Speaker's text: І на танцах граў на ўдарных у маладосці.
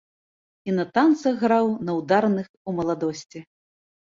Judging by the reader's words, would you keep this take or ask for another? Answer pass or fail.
pass